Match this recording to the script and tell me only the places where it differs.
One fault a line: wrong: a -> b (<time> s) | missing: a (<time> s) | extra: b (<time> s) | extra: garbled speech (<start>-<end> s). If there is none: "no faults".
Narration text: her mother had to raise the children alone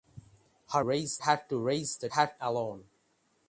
wrong: mother -> raise (0.8 s)
wrong: children -> had (2.1 s)